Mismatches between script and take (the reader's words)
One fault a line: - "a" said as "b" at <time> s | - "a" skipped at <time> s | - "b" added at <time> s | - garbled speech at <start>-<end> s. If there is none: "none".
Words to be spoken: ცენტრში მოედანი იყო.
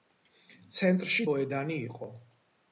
none